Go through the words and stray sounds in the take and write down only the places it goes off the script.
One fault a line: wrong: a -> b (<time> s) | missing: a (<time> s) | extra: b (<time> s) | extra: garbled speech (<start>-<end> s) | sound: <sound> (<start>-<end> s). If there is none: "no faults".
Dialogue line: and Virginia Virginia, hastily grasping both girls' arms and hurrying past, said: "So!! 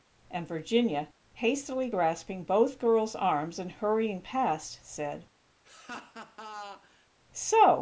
missing: Virginia (1.1 s)
sound: laugh (5.6-7.1 s)